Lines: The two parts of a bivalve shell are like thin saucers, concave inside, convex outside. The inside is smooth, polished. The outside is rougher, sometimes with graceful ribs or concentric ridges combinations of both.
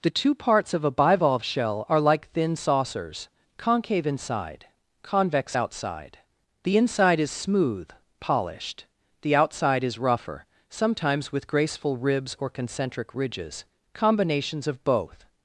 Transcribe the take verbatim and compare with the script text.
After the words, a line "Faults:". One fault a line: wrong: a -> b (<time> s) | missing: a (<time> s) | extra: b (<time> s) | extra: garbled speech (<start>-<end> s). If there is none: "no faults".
The two parts of a bivalve shell are like thin saucers, concave inside, convex outside. The inside is smooth, polished. The outside is rougher, sometimes with graceful ribs or concentric ridges combinations of both.
Faults:
no faults